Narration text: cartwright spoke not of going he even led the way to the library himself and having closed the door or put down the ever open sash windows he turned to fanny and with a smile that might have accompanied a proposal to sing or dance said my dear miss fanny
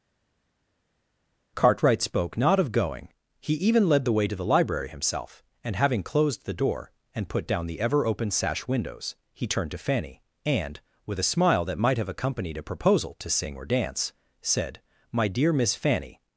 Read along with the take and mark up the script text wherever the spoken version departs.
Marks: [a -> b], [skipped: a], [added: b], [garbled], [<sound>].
cartwright spoke not of going he even led the way to the library himself and having closed the door [or -> and] put down the ever open sash windows he turned to fanny and with a smile that might have accompanied a proposal to sing or dance said my dear miss fanny